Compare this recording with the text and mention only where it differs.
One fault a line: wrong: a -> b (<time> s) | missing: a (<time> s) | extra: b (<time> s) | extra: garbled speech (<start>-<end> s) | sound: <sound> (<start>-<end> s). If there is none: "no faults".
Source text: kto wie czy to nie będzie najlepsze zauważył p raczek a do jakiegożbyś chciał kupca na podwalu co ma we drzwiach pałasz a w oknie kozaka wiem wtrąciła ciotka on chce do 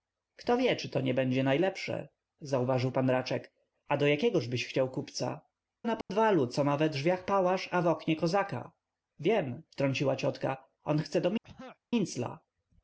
sound: dropout (6.0-6.1 s)
sound: throat clearing (11.4-11.8 s)